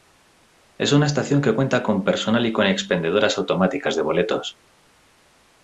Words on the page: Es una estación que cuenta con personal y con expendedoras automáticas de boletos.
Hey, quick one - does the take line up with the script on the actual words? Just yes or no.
yes